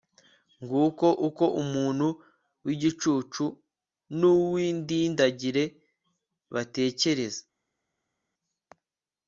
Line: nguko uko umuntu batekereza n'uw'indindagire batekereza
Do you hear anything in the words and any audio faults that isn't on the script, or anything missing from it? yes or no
yes